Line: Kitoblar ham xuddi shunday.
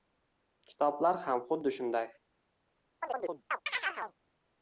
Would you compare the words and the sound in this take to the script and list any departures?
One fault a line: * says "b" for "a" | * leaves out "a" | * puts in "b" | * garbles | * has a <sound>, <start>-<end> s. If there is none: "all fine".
* has a chirp, 3.0-4.1 s